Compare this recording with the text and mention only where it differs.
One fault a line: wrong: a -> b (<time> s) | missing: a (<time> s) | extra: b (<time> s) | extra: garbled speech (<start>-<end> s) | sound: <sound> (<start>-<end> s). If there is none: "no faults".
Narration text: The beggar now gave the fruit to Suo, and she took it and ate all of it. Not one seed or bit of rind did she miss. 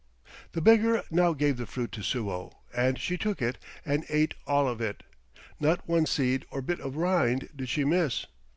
no faults